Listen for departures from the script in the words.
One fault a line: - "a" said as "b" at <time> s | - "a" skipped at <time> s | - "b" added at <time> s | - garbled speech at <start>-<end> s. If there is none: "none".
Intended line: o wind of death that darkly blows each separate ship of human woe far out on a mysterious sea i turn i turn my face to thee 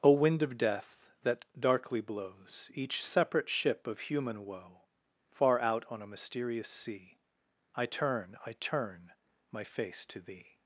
none